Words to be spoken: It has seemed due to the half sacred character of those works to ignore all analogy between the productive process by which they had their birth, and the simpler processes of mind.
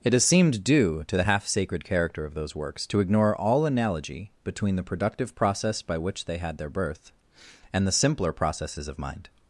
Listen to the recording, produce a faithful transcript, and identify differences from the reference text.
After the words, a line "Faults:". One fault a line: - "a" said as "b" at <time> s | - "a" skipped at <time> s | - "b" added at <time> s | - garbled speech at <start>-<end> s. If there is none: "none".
It has seemed due to the half sacred character of those works to ignore all analogy between the productive process by which they had their birth, and the simpler processes of mind.
Faults:
none